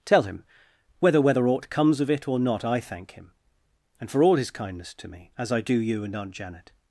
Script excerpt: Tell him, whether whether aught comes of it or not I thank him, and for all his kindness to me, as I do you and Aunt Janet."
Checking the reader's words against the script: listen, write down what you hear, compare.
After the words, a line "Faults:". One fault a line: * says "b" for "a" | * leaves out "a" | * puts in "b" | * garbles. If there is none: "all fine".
Tell him, whether whether aught comes of it or not I thank him, and for all his kindness to me, as I do you and Aunt Janet."
Faults:
all fine